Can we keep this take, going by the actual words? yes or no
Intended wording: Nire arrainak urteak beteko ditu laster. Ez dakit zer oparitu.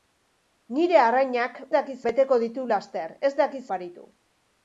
no